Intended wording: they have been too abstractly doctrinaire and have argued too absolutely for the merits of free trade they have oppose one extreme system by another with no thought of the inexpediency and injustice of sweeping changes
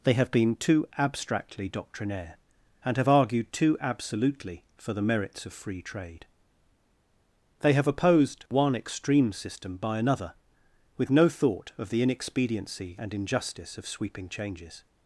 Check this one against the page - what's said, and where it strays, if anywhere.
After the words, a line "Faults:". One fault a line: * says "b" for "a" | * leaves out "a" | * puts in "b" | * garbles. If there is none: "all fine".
they have been too abstractly doctrinaire and have argued too absolutely for the merits of free trade they have opposed one extreme system by another with no thought of the inexpediency and injustice of sweeping changes
Faults:
* says "opposed" for "oppose"